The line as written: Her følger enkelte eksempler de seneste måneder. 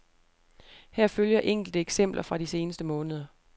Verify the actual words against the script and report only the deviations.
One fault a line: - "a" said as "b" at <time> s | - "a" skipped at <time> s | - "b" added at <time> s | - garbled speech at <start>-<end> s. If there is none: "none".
- "fra" added at 2.2 s